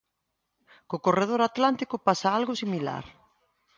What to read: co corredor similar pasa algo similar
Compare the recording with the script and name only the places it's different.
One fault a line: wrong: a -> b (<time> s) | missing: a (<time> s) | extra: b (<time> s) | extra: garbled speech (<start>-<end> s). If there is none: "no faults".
wrong: similar -> atlántico (1.5 s)